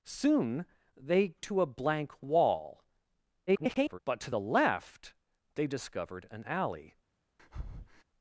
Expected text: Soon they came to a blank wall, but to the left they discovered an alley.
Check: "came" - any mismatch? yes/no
yes